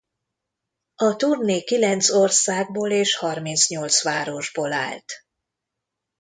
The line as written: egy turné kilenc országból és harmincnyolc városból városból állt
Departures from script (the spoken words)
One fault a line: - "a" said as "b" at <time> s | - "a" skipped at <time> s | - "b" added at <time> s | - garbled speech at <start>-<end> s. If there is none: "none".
- "egy" said as "a" at 0.9 s
- "városból" skipped at 4.7 s